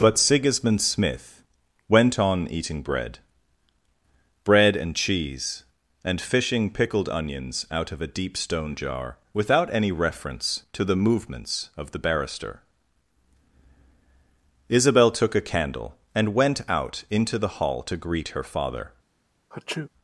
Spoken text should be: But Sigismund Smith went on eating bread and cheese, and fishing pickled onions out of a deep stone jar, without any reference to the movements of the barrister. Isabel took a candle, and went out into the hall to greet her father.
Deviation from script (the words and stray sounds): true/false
true